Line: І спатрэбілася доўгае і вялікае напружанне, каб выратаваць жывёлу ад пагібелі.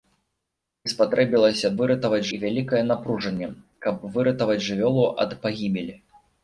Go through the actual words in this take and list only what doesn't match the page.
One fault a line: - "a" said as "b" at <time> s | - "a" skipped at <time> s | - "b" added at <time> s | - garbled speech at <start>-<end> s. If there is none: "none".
- "доўгае" said as "выратаваць" at 1.8 s